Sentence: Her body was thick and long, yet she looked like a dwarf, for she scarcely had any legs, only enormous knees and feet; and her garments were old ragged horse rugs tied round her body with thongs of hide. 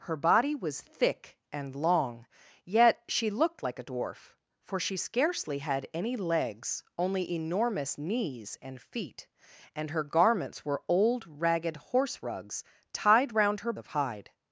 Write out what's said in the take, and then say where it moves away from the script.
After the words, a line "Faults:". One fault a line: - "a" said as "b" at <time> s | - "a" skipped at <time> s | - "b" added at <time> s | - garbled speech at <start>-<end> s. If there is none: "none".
Her body was thick and long, yet she looked like a dwarf, for she scarcely had any legs, only enormous knees and feet; and her garments were old ragged horse rugs tied round her of hide.
Faults:
- "body with thongs" skipped at 13.7 s